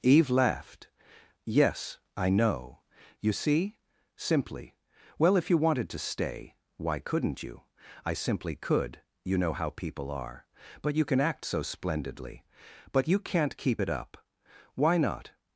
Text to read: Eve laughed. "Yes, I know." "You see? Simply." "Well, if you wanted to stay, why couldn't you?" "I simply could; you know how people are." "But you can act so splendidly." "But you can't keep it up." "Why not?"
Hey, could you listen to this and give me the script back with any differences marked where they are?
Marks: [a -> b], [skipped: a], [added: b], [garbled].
Eve laughed. "Yes, I know." "You see? Simply." "Well, if you wanted to stay, why couldn't you?" "I simply could; you know how people are." "But you can act so splendidly." "But you can't keep it up." "Why not?"